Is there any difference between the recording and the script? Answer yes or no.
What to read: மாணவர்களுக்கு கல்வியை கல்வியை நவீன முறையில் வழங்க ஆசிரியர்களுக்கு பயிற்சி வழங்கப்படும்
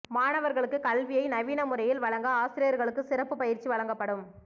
yes